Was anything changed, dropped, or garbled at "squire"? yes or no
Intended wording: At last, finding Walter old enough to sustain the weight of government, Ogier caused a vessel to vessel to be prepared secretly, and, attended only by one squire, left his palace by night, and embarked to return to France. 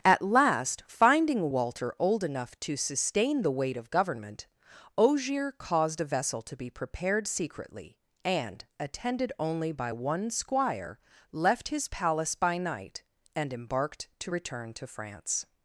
no